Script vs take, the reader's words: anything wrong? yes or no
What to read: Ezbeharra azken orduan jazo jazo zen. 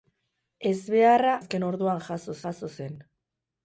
no